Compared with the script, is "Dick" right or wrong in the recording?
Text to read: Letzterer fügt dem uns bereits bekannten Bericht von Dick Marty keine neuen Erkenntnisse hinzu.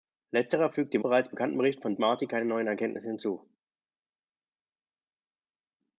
wrong